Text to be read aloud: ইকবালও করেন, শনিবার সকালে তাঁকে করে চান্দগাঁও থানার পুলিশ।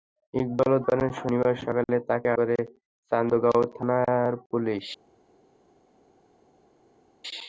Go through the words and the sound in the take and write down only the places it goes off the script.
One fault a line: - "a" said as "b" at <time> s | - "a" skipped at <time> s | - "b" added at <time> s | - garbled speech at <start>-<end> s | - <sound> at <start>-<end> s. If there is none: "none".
none